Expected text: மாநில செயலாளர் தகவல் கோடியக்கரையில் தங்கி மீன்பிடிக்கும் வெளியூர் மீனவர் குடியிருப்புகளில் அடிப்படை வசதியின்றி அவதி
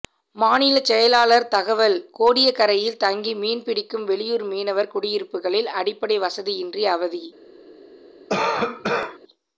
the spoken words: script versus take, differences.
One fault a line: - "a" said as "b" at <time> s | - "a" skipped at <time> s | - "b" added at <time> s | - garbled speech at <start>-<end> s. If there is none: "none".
none